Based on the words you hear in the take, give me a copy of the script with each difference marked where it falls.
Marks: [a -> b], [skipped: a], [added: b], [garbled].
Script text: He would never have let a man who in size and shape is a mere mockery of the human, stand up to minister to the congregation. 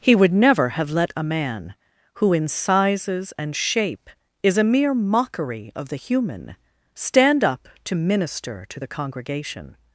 He would never have let a man who in [size -> sizes] and shape is a mere mockery of the human, stand up to minister to the congregation.